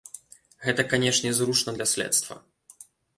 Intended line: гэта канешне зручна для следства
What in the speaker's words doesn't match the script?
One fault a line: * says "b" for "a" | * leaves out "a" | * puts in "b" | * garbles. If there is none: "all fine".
all fine